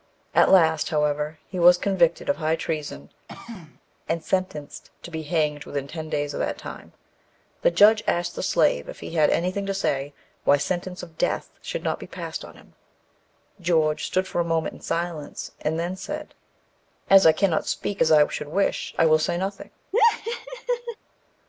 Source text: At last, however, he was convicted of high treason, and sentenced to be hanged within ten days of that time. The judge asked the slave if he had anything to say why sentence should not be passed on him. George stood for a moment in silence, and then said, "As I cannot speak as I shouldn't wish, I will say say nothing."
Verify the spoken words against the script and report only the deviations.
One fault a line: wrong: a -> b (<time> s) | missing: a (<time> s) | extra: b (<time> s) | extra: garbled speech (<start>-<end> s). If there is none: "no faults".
extra: of death (11.0 s)
wrong: shouldn't -> should (18.3 s)
missing: say (19.4 s)